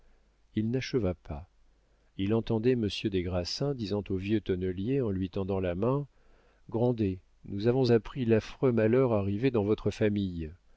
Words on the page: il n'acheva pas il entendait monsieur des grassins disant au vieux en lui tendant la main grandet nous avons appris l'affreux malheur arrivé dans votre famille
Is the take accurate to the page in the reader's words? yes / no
no